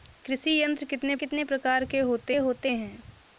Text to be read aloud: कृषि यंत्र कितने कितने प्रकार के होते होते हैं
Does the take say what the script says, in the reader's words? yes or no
yes